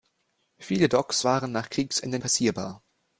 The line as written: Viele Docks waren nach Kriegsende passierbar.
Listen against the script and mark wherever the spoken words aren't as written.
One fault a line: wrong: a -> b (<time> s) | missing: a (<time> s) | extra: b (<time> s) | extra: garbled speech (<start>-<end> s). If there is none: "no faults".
no faults